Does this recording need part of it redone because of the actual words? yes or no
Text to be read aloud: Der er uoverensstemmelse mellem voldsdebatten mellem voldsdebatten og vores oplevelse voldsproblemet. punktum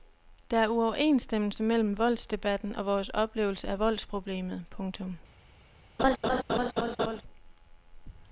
yes